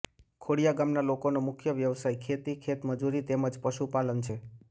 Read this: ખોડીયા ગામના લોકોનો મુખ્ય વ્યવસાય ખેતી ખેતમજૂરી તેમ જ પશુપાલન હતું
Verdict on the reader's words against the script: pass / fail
fail